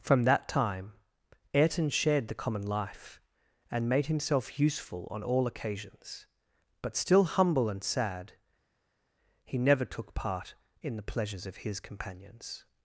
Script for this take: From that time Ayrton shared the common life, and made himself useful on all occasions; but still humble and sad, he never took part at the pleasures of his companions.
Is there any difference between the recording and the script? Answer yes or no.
yes